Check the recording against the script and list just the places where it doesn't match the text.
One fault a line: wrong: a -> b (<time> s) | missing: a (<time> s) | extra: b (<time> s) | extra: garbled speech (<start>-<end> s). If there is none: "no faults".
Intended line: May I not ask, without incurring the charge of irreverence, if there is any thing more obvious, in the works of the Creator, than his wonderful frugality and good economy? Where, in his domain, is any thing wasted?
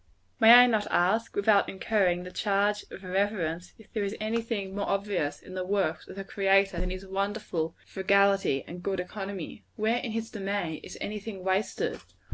no faults